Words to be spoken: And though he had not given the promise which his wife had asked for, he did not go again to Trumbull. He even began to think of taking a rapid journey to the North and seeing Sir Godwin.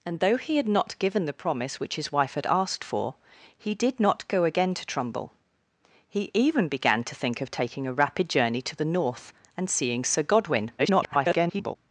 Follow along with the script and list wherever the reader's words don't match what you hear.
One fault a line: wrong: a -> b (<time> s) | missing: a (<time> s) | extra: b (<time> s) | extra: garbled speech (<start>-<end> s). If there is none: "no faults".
extra: garbled speech (10.8-11.8 s)